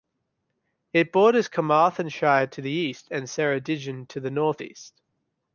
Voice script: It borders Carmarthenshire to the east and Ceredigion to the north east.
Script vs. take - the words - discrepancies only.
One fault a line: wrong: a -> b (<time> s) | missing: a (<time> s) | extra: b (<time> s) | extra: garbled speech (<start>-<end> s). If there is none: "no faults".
no faults